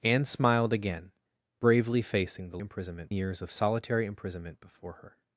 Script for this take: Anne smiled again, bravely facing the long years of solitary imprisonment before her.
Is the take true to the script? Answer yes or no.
no